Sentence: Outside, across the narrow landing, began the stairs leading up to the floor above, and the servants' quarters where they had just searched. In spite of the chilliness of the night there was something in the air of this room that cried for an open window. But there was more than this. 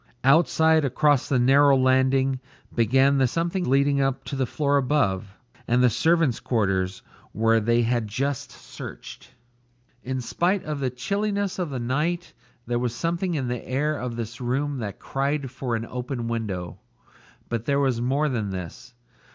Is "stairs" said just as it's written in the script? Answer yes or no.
no